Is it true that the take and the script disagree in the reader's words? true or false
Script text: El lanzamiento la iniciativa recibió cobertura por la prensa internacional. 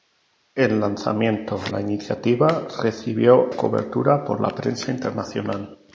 false